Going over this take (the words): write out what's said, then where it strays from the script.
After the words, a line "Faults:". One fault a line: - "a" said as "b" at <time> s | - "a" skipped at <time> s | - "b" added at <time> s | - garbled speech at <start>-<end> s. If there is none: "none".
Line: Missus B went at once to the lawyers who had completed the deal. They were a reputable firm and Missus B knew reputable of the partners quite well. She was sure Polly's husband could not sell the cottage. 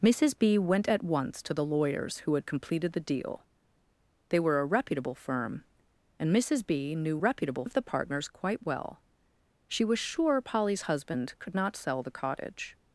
Missus B went at once to the lawyers who had completed the deal. They were a reputable firm and Missus B knew reputable of the partners quite well. She was sure Polly's husband could not sell the cottage.
Faults:
none